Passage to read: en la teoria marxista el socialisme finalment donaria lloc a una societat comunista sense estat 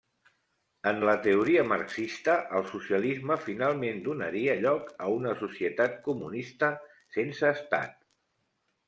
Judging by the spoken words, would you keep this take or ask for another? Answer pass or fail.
pass